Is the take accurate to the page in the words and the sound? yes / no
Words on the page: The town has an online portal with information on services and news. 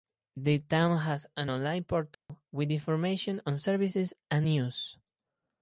no